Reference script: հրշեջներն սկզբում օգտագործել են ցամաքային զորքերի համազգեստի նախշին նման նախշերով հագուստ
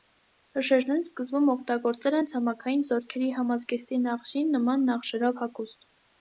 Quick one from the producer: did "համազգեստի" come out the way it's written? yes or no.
yes